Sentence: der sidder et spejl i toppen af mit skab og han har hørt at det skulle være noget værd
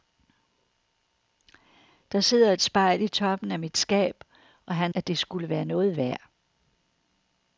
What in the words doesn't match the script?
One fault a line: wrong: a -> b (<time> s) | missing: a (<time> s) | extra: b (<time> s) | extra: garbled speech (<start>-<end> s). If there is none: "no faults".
missing: har hørt (4.9 s)